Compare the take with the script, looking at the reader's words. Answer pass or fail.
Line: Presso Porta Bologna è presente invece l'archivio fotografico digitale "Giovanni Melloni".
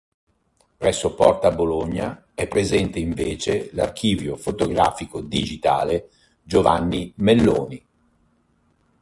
pass